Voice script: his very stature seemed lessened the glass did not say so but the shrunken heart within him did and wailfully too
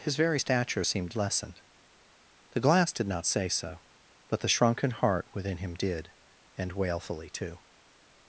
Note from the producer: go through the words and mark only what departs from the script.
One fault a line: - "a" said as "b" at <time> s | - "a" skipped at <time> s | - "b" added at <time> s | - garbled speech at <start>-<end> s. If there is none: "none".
none